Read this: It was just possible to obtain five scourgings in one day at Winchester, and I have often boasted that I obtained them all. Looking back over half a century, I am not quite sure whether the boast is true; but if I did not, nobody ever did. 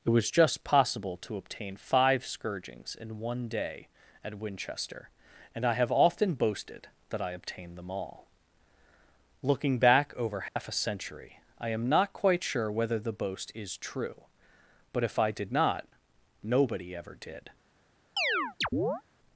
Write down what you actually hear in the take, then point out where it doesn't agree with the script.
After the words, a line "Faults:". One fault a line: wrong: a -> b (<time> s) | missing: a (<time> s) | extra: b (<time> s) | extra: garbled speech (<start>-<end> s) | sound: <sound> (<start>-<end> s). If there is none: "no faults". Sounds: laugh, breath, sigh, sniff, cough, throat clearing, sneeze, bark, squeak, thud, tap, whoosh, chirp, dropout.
It was just possible to obtain five scourgings in one day at Winchester, and I have often boasted that I obtained them all. Looking back over half a century, I am not quite sure whether the boast is true; but if I did not, nobody ever did.
Faults:
sound: dropout (10.5-10.6 s)
sound: chirp (18.2-19.0 s)